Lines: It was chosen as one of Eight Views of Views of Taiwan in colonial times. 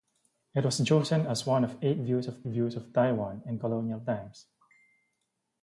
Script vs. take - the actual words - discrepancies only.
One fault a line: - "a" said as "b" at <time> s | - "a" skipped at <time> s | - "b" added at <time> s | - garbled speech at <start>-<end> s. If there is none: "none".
none